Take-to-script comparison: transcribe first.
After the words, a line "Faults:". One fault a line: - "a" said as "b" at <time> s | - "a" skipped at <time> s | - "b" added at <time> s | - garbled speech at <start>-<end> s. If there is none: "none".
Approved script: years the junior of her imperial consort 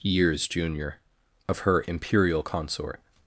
years junior of her imperial consort
Faults:
- "the" skipped at 0.5 s